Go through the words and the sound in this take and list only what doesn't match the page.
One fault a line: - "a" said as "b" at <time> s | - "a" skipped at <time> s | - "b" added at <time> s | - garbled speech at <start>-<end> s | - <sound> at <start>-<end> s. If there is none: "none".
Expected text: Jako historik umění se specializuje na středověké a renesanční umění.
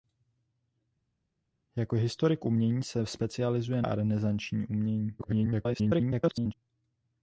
- "na středověké" skipped at 3.8 s
- garbled speech at 5.2-6.5 s